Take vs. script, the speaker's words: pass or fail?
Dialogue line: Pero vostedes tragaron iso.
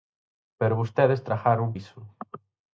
pass